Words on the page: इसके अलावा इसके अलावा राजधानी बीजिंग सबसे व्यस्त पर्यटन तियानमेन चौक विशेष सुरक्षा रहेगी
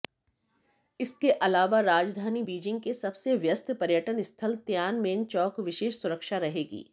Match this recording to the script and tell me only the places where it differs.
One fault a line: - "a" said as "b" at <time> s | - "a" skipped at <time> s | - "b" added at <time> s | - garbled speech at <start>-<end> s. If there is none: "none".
- "इसके अलावा" skipped at 1.8 s
- "के" added at 2.8 s
- "स्थल" added at 4.2 s